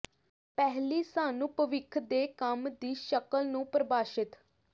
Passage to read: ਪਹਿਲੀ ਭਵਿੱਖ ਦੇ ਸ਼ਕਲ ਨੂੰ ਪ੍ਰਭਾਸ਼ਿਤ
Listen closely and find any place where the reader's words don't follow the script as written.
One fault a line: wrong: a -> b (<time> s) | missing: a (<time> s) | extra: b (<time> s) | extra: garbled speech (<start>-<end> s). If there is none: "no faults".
extra: ਸਾਨੂੰ (1.0 s)
extra: ਕੰਮ ਦੀ (2.4 s)